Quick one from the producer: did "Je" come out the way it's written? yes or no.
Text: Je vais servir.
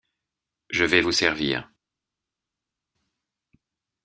yes